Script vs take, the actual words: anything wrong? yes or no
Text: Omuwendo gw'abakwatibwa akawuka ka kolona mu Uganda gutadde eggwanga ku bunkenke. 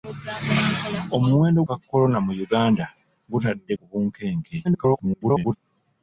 yes